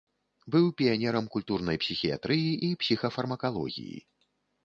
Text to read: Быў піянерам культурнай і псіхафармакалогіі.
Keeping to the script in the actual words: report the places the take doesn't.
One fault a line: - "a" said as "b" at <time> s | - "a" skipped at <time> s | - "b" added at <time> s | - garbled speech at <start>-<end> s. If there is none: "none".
- "псіхіятрыі" added at 1.8 s